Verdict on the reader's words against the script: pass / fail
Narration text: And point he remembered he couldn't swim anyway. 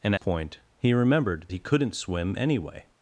pass